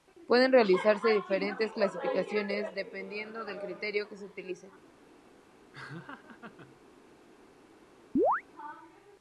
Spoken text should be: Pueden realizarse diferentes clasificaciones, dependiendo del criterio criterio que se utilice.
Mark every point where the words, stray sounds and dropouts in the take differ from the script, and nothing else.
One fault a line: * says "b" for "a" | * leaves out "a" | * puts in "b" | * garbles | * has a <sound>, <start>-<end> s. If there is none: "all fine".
* leaves out "criterio"
* has a laugh, 5.7-6.8 s
* has a chirp, 8.2-8.4 s